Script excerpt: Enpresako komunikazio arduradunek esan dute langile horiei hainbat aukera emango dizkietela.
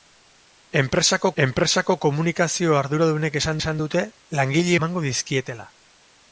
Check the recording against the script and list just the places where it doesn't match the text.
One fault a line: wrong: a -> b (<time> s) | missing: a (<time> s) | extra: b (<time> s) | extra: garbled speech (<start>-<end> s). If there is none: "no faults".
extra: enpresako (1.4 s)
extra: esan (3.6 s)
missing: horiei hainbat aukera (4.8 s)